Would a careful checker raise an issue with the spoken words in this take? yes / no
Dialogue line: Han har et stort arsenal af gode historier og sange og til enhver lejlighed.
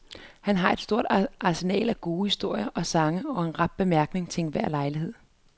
yes